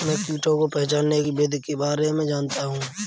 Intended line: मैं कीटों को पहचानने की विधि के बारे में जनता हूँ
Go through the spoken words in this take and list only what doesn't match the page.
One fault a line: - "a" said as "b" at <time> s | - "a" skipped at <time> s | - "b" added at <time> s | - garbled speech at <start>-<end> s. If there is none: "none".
none